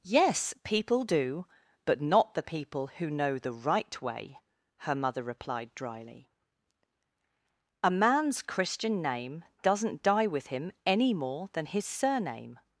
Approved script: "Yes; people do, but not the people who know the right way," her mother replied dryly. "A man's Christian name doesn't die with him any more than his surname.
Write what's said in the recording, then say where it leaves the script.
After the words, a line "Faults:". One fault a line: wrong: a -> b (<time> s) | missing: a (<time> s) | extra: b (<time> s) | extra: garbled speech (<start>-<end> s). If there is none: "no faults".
"Yes; people do, but not the people who know the right way," her mother replied dryly. "A man's Christian name doesn't die with him any more than his surname.
Faults:
no faults